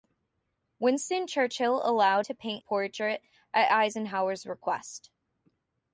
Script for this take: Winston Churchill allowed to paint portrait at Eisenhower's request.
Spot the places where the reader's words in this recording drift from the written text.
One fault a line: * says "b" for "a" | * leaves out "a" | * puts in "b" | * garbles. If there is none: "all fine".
all fine